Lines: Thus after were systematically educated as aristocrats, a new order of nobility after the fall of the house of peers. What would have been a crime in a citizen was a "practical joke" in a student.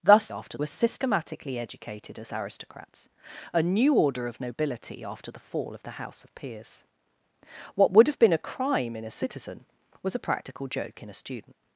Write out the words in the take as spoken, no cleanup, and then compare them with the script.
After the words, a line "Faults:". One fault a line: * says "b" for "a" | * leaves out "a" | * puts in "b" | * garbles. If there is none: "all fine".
Thus after were systematically educated as aristocrats, a new order of nobility after the fall of the house of peers. What would have been a crime in a citizen was a "practical joke" in a student.
Faults:
all fine